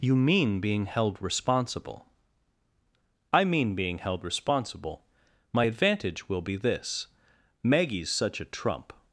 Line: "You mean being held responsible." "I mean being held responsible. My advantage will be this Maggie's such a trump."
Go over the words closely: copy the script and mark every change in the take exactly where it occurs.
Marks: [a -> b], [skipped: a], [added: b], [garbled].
"You mean being held responsible." "I mean being held responsible. My advantage will be this Maggie's such a trump."